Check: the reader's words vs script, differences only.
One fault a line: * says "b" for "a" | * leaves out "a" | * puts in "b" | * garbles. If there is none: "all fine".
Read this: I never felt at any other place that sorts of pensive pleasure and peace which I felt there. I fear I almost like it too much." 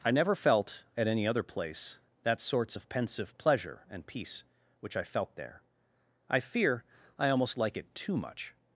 all fine